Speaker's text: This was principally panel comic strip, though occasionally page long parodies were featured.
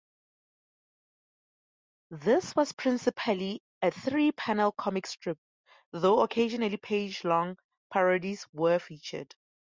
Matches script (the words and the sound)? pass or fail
fail